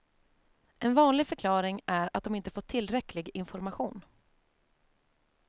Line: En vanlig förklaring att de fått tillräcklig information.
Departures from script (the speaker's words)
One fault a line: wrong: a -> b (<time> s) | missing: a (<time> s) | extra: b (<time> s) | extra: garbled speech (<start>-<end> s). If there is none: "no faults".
extra: är (1.9 s)
extra: inte (2.4 s)